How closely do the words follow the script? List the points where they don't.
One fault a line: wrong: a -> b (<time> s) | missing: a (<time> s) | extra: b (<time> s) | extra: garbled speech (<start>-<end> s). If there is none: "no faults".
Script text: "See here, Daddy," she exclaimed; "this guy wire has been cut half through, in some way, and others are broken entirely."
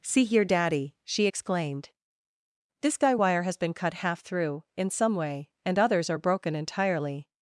no faults